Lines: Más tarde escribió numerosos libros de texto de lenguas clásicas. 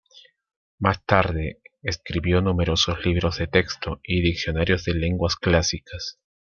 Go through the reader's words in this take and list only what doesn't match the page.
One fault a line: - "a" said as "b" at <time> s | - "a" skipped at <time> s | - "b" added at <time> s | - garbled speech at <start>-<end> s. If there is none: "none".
- "y diccionarios" added at 4.0 s